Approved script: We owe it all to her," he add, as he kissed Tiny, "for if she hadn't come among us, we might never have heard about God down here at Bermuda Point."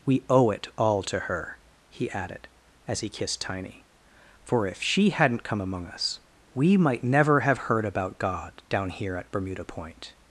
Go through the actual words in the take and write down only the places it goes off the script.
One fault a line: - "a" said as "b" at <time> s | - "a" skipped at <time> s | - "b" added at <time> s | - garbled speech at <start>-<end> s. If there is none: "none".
- "add" said as "added" at 2.1 s